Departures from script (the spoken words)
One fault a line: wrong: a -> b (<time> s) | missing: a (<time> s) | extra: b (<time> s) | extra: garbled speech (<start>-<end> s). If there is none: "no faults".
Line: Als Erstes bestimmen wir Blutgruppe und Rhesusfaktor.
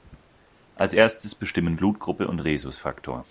missing: wir (1.8 s)